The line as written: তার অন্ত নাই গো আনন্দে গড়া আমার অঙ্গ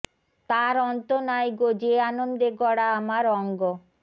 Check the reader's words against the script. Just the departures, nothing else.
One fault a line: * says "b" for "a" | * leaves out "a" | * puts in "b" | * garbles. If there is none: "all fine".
* puts in "যে"